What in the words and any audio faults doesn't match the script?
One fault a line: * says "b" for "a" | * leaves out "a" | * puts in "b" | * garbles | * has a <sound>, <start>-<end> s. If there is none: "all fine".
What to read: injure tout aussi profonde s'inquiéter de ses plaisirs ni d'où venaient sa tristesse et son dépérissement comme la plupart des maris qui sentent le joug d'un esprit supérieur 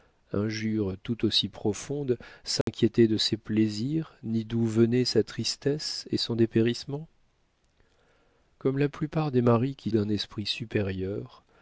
* has a dropout, 2.6-2.7 s
* leaves out "sentent le joug"